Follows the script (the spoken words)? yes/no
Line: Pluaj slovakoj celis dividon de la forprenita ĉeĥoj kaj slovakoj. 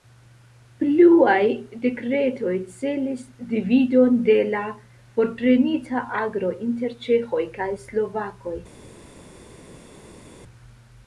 no